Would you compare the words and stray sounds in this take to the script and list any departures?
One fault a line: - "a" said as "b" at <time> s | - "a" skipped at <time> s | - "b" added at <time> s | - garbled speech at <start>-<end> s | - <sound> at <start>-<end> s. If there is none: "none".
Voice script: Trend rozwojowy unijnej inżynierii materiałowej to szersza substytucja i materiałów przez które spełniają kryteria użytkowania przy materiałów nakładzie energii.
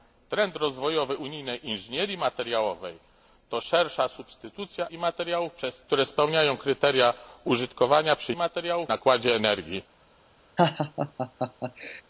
- laugh at 10.6-12.0 s